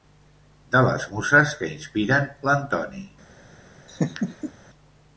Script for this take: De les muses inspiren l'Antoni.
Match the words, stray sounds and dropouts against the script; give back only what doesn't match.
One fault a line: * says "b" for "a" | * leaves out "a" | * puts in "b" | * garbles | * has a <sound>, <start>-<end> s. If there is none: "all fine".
* puts in "que"
* has a laugh, 3.9-4.5 s